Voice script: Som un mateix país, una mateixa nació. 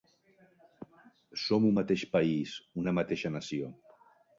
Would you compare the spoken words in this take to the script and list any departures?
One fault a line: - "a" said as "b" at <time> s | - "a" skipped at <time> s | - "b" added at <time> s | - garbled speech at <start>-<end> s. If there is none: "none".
none